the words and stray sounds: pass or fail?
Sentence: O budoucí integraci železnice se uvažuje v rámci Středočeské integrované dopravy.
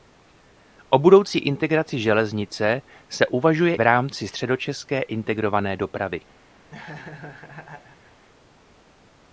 fail